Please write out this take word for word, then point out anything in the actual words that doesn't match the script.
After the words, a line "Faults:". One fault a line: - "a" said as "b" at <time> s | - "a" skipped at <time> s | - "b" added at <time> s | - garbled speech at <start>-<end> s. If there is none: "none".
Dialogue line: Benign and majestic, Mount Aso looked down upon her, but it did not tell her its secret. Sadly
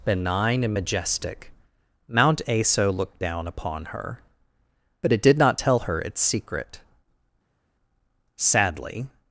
Benign and majestic, Mount Aso looked down upon her, but it did not tell her its secret. Sadly
Faults:
none